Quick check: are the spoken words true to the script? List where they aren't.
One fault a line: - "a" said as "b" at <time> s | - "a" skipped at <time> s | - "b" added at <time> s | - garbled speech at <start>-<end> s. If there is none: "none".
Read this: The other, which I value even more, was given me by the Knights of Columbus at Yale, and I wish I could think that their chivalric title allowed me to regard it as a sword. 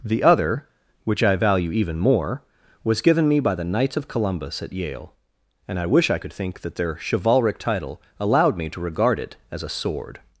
none